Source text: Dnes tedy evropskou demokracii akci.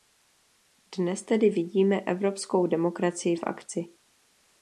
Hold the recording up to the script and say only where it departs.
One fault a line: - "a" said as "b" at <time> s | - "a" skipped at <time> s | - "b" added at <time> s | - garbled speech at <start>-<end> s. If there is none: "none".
- "vidíme" added at 1.5 s
- "v" added at 3.3 s